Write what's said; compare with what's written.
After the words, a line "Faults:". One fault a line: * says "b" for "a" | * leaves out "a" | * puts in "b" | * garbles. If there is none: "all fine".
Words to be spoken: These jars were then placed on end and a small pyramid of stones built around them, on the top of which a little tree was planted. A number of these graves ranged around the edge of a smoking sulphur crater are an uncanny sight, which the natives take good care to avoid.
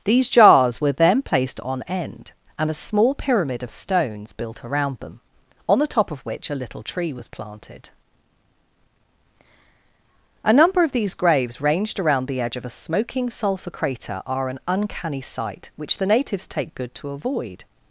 These jars were then placed on end and a small pyramid of stones built around them, on the top of which a little tree was planted. A number of these graves ranged around the edge of a smoking sulphur crater are an uncanny sight, which the natives take good to avoid.
Faults:
* leaves out "care"